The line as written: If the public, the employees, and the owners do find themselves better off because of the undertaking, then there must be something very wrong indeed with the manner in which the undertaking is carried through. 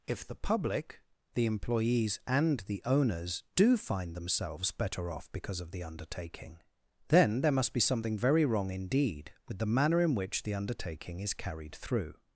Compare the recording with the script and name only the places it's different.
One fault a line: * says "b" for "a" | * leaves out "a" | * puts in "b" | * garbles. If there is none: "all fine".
all fine